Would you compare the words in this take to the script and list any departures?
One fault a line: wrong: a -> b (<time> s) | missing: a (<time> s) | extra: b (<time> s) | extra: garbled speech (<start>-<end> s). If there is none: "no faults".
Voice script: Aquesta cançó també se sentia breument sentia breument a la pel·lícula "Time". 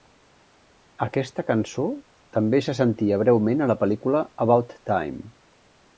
missing: sentia breument (3.6 s)
extra: About (4.5 s)